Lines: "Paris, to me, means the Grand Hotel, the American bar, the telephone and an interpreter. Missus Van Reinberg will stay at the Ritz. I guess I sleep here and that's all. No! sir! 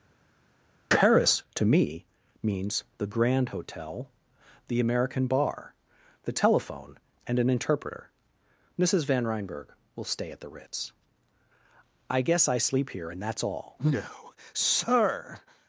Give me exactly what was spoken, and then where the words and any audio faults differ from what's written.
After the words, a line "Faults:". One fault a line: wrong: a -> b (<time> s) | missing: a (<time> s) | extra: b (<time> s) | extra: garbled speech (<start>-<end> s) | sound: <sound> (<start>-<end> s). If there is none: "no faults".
"Paris, to me, means the Grand Hotel, the American bar, the telephone and an interpreter. Missus Van Reinberg will stay at the Ritz. I guess I sleep here and that's all. No! sir!
Faults:
no faults